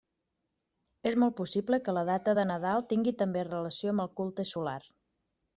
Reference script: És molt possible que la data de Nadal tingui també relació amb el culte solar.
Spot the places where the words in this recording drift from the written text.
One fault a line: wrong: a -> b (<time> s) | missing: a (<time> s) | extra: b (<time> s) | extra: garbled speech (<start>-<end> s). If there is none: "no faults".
no faults